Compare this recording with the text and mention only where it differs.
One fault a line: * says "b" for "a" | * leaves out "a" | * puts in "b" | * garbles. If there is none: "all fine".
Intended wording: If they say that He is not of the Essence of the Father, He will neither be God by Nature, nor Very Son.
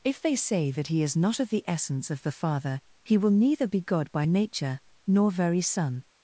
all fine